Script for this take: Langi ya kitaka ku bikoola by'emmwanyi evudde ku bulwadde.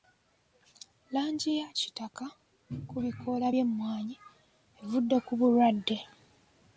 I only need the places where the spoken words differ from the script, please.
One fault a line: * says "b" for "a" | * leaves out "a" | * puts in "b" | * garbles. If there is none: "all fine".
all fine